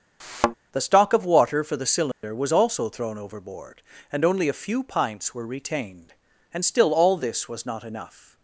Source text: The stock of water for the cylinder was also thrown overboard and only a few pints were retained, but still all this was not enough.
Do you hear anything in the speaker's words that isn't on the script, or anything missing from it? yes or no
yes